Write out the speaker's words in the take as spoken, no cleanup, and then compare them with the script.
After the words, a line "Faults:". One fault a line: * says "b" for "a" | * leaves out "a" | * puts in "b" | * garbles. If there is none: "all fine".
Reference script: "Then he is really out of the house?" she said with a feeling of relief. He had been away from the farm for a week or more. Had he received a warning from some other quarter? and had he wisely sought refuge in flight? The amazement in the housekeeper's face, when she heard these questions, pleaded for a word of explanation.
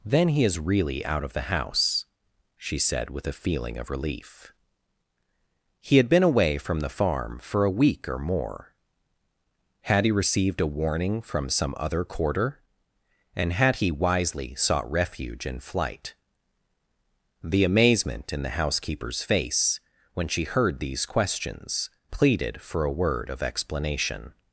"Then he is really out of the house?" she said with a feeling of relief. He had been away from the farm for a week or more. Had he received a warning from some other quarter? and had he wisely sought refuge in flight? The amazement in the housekeeper's face, when she heard these questions, pleaded for a word of explanation.
Faults:
all fine